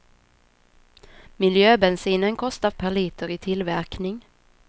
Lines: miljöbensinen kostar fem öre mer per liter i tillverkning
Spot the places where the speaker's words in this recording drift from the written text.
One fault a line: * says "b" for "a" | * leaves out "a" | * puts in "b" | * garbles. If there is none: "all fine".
* leaves out "fem öre mer"